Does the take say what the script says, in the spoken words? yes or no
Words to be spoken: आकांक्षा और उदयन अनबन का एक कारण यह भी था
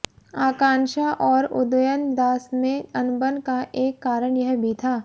no